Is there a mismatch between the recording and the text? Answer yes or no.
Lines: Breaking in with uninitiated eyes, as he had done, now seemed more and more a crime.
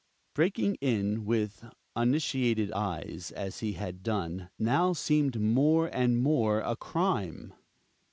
no